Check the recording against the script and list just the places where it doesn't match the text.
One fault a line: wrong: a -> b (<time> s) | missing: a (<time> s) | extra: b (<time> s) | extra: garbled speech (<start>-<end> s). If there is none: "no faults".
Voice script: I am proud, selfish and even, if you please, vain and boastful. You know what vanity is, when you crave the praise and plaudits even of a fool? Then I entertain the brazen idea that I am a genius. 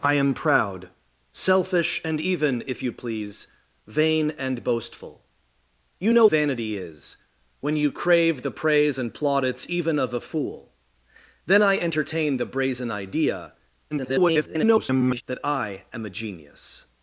missing: what (6.3 s)
extra: garbled speech (13.9-15.2 s)